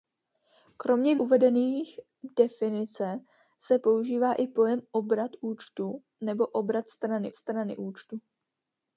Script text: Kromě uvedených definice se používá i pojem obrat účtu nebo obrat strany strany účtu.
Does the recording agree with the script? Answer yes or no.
yes